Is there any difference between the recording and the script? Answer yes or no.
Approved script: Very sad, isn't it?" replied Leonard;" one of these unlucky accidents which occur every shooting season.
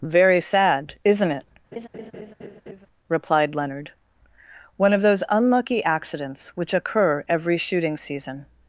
yes